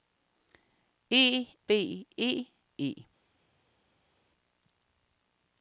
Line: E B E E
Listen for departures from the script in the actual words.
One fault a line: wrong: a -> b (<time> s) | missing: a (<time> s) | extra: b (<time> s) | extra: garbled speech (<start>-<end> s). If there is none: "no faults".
no faults